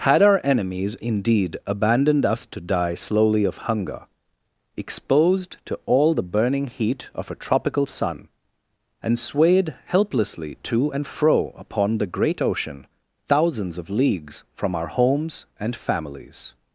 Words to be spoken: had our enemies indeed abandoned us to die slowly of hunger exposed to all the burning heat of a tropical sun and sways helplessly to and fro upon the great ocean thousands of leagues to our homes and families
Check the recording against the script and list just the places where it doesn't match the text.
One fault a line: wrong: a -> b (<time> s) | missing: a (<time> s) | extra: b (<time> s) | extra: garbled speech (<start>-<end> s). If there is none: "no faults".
wrong: sways -> swayed (9.2 s)
wrong: to -> from (14.5 s)